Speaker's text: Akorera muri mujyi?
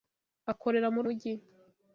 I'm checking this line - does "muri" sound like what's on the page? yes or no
yes